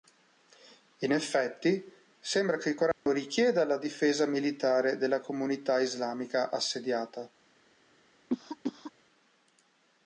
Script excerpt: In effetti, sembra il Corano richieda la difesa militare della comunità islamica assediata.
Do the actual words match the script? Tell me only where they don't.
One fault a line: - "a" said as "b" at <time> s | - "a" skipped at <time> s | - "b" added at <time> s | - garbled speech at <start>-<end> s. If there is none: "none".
- "che" added at 2.6 s